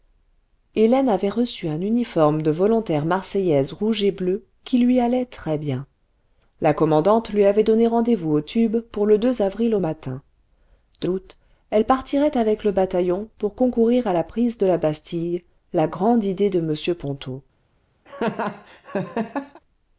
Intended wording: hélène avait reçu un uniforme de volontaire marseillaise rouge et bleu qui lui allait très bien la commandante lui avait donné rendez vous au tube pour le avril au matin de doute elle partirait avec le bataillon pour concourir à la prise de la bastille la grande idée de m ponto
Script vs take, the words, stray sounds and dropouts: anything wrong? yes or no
yes